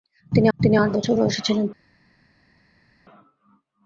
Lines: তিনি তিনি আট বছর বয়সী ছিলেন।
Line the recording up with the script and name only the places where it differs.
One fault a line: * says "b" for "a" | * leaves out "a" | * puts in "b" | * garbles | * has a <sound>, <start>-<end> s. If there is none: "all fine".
all fine